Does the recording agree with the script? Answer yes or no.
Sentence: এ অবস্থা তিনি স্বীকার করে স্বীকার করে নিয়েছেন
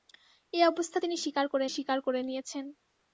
yes